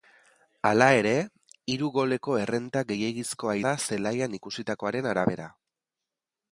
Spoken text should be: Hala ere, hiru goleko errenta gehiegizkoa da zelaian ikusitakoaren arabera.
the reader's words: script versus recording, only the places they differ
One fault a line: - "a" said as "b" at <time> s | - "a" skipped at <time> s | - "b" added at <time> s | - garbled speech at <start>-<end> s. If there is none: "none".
none